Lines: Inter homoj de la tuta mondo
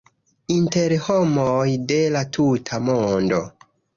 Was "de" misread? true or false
false